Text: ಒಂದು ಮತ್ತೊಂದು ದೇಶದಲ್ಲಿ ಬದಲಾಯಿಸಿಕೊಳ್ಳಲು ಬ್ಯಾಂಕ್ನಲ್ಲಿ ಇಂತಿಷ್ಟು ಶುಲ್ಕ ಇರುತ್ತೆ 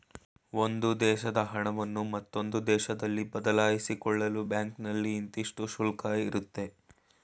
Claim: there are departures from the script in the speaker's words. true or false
true